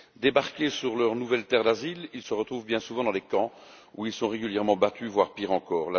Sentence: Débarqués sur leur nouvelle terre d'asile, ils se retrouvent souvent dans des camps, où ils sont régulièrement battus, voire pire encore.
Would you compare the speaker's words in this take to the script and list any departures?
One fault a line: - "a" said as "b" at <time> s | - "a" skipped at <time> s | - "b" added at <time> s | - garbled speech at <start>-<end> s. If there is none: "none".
- "bien" added at 2.6 s